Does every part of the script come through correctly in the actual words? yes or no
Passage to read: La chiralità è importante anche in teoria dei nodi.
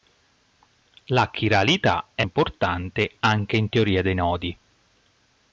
yes